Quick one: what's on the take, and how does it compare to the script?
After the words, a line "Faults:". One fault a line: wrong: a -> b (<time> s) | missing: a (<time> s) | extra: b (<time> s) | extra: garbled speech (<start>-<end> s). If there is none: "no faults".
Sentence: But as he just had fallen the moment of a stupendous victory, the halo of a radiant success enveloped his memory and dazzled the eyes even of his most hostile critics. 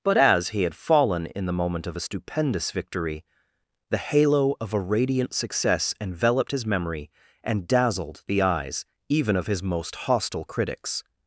But as he had fallen in the moment of a stupendous victory, the halo of a radiant success enveloped his memory and dazzled the eyes even of his most hostile critics.
Faults:
missing: just (0.6 s)
extra: in (1.3 s)